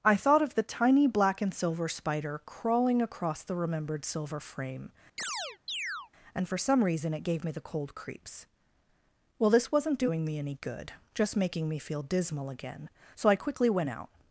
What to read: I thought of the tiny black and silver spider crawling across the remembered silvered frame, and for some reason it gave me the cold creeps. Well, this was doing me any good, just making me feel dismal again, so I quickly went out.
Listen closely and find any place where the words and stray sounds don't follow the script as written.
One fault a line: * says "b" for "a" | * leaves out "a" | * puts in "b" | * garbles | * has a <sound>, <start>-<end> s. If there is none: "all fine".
* says "silver" for "silvered"
* has a chirp, 5.2-6.1 s
* says "wasn't" for "was"